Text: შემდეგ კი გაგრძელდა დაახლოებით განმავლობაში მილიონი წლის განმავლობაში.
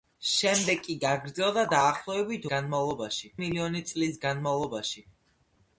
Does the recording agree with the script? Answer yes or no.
yes